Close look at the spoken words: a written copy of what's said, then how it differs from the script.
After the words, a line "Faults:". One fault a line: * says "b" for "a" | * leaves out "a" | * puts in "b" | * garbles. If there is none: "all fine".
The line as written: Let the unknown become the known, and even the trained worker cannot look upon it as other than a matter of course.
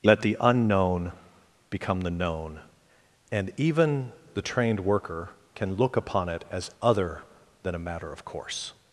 Let the unknown become the known, and even the trained worker can look upon it as other than a matter of course.
Faults:
* says "can" for "cannot"